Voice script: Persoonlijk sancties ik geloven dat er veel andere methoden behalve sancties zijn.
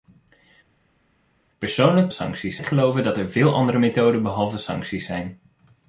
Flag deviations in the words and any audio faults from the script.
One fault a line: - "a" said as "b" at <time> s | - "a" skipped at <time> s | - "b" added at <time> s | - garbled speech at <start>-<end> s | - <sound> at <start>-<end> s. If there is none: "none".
none